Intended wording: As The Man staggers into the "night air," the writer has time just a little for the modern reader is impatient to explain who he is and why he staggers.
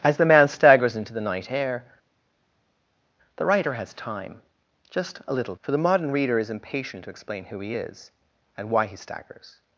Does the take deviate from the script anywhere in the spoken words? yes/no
no